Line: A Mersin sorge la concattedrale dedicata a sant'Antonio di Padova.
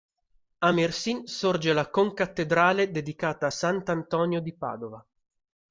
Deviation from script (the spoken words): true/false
false